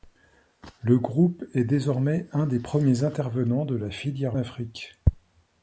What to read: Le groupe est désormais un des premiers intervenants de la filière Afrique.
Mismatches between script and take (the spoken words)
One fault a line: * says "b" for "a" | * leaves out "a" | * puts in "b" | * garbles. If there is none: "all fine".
all fine